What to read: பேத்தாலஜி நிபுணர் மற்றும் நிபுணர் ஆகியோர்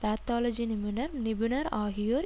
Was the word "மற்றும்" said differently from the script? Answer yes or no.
yes